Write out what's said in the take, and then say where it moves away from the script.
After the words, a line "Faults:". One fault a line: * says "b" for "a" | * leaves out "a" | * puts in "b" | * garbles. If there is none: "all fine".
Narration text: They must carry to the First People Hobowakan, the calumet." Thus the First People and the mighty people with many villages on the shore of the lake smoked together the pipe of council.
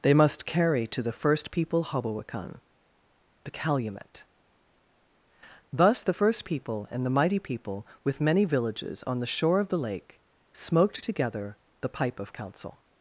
They must carry to the First People Hobowakan, the calumet." Thus the First People and the mighty people with many villages on the shore of the lake smoked together the pipe of council.
Faults:
all fine